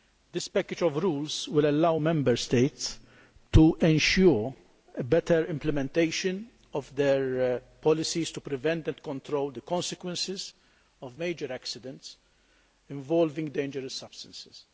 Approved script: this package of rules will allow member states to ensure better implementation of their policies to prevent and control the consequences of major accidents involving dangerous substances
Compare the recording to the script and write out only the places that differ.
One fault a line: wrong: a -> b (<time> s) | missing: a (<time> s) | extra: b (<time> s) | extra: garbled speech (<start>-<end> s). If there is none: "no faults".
no faults